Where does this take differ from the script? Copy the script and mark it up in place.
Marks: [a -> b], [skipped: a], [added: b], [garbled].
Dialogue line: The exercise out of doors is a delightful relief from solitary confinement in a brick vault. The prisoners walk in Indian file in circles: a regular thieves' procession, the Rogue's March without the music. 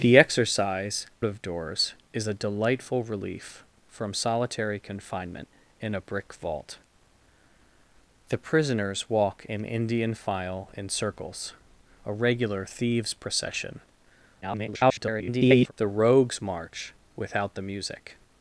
The exercise [skipped: out] of doors is a delightful relief from solitary confinement in a brick vault. The prisoners walk in Indian file in circles: a regular thieves' procession, [garbled] the Rogue's March without the music.